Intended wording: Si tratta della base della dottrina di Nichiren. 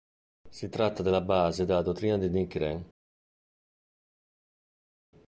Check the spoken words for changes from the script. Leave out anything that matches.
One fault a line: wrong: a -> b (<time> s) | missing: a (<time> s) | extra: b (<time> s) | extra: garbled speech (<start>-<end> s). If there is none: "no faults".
no faults